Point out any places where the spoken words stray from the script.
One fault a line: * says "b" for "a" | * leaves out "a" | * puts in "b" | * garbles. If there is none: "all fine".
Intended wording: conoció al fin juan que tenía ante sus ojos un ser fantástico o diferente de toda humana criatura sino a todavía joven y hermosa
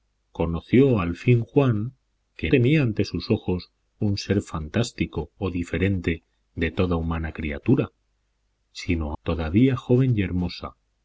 all fine